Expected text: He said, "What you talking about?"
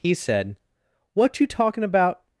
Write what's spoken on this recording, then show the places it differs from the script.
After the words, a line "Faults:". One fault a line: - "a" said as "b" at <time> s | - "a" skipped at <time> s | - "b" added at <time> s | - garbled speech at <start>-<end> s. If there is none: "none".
He said, "What you talking about?"
Faults:
none